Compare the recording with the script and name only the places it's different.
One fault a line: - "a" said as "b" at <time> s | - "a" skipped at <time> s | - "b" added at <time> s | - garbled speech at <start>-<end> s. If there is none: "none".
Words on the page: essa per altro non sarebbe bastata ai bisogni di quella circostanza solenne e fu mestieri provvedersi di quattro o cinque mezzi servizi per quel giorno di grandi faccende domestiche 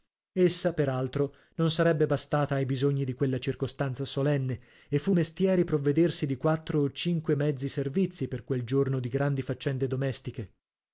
none